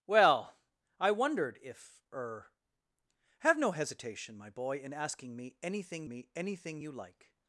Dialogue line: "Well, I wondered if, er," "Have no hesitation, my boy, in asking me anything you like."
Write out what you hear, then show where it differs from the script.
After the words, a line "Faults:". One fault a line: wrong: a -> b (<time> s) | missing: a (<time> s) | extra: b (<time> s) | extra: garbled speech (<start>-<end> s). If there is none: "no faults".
"Well, I wondered if, er," "Have no hesitation, my boy, in asking me anything me anything you like."
Faults:
extra: me anything (6.1 s)